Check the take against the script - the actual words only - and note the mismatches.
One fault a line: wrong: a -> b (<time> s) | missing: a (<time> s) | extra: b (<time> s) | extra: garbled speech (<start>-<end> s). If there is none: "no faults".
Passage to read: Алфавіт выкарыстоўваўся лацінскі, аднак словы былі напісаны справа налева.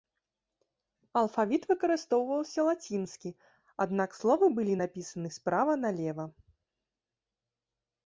no faults